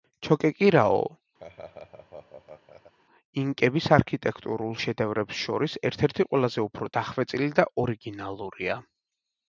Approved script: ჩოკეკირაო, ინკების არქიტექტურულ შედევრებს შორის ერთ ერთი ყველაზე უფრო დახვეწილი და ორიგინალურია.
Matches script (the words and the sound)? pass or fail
fail